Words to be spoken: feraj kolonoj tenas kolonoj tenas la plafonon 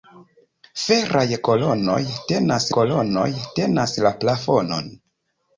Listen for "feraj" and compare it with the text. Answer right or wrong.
right